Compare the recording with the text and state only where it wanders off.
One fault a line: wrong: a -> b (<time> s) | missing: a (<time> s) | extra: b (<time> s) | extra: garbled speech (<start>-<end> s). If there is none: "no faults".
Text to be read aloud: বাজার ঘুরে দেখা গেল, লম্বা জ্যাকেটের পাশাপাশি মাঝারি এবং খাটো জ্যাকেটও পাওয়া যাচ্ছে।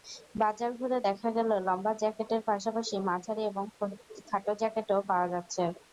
no faults